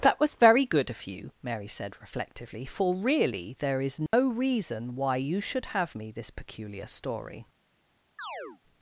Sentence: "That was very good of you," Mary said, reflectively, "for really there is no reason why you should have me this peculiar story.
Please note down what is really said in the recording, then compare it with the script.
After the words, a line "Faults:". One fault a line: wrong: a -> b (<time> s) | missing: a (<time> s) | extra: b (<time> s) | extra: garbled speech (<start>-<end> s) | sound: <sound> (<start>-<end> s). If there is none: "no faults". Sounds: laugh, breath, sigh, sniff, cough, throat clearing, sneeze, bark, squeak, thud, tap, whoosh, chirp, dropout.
"That was very good of you," Mary said, reflectively, "for really there is no reason why you should have me this peculiar story.
Faults:
sound: dropout (4.1-4.1 s)
sound: chirp (8.2-8.6 s)